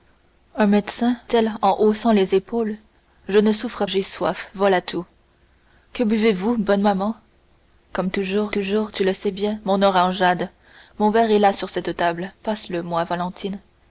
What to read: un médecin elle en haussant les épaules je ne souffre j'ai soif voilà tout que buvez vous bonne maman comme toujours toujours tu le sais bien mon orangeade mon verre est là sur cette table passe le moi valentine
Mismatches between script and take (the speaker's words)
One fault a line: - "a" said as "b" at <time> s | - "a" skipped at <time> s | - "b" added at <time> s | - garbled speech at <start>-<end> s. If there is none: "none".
none